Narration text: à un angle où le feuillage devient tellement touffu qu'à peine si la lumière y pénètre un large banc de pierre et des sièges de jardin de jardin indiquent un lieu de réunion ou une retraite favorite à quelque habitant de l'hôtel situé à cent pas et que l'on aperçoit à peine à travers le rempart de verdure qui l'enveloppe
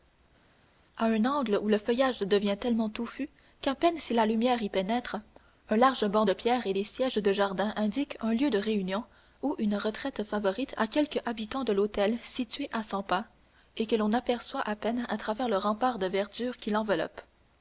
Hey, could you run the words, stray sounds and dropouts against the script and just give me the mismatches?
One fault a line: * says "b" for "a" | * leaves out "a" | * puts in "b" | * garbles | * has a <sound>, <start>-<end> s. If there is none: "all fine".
* leaves out "de jardin"